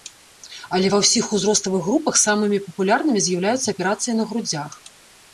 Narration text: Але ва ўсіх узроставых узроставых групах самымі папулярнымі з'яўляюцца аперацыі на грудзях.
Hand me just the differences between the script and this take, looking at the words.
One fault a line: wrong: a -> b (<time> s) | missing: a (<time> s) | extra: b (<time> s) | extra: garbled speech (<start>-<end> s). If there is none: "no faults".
missing: узроставых (1.8 s)